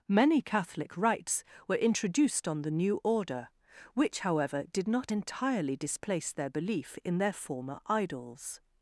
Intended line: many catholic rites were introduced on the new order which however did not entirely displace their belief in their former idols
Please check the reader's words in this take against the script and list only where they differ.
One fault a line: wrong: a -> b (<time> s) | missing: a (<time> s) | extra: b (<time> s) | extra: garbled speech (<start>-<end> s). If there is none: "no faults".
no faults